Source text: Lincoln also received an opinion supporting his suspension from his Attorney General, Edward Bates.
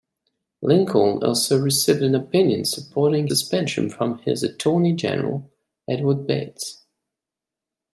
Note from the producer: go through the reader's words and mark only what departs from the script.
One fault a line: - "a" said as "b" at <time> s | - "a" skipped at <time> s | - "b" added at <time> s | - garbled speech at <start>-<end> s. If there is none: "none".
- "his" skipped at 3.3 s